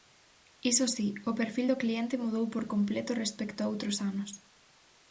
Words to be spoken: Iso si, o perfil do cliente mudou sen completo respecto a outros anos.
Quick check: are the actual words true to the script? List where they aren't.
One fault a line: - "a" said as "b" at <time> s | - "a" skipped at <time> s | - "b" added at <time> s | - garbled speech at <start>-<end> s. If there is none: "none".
- "sen" said as "por" at 2.5 s